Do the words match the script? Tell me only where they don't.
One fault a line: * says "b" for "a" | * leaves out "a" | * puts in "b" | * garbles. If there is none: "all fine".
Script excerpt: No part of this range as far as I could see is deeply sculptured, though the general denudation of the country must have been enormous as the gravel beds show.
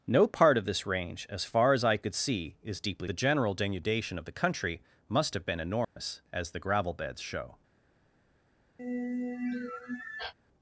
* leaves out "sculptured though"